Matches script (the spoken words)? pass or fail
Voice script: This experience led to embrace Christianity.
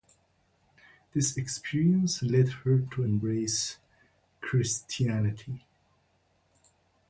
fail